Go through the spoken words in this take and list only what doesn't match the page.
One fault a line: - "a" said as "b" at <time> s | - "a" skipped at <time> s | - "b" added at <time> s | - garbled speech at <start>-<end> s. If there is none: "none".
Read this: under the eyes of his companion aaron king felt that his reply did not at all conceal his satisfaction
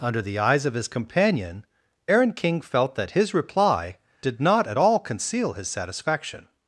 none